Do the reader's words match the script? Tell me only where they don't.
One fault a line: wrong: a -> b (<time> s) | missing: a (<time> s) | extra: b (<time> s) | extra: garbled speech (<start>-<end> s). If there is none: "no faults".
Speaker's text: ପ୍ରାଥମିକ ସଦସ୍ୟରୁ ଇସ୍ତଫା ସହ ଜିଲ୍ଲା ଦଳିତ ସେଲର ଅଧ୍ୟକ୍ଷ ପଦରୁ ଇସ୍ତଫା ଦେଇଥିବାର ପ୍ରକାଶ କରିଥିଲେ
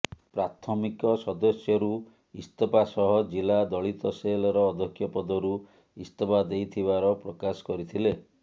no faults